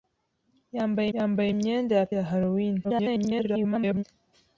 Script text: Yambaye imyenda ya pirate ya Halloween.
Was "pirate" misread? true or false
true